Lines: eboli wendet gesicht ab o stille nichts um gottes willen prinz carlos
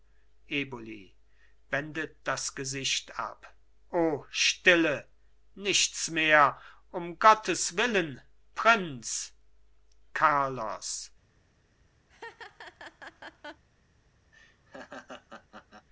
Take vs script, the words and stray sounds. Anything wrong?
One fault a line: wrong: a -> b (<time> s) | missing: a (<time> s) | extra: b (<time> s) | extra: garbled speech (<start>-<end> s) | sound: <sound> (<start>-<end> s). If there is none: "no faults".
extra: das (2.2 s)
extra: mehr (6.1 s)
sound: laugh (12.1-13.6 s)
sound: laugh (14.3-15.9 s)